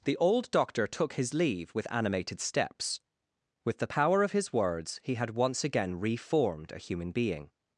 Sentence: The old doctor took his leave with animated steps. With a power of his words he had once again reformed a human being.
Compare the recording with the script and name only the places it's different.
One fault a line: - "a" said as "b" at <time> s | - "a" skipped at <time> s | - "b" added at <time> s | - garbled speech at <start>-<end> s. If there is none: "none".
- "a" said as "the" at 3.8 s